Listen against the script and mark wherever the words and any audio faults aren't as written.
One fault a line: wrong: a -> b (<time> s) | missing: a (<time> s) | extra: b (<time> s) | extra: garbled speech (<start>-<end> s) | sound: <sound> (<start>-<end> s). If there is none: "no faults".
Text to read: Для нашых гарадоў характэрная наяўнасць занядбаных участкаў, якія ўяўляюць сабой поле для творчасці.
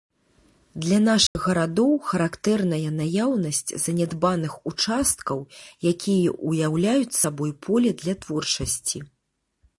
sound: dropout (1.3-1.4 s)